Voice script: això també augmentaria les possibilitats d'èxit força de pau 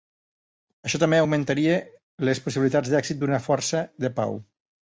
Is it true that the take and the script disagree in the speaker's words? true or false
true